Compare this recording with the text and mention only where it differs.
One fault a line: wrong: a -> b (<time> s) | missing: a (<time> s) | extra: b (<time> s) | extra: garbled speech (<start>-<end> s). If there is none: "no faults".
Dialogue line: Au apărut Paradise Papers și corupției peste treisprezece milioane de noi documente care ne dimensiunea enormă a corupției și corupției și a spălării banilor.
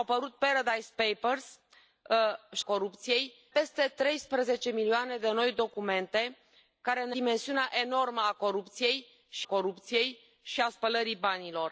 no faults